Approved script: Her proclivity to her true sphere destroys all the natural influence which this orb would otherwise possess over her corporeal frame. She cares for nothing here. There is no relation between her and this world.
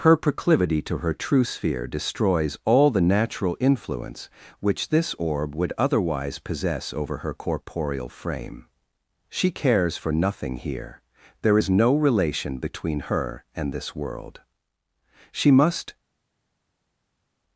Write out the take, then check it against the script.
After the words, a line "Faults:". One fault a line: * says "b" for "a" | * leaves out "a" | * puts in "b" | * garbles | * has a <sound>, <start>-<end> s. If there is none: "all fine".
Her proclivity to her true sphere destroys all the natural influence which this orb would otherwise possess over her corporeal frame. She cares for nothing here. There is no relation between her and this world. "She must
Faults:
* puts in "She must"